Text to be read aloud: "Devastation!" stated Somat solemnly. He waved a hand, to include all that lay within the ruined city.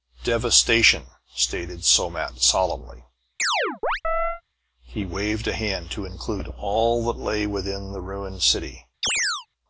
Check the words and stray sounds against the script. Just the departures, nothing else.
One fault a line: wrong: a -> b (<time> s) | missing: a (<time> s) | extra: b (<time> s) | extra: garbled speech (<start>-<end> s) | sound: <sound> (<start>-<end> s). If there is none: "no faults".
sound: chirp (3.4-4.4 s)
sound: chirp (9.0-9.5 s)